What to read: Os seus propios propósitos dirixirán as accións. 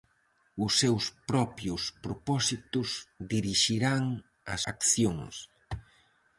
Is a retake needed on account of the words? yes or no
no